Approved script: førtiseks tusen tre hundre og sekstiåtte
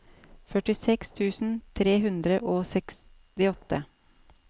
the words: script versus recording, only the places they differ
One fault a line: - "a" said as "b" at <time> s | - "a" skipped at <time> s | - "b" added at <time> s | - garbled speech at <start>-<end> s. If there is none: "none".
none